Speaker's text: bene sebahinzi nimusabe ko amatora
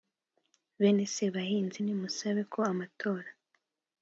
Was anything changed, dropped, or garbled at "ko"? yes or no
no